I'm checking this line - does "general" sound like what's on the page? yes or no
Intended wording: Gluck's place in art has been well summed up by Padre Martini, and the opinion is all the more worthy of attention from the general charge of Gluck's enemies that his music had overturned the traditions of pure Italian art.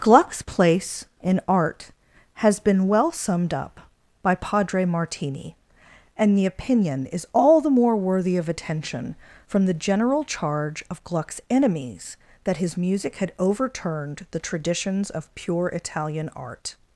yes